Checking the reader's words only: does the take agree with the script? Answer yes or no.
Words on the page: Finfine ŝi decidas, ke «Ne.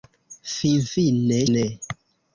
no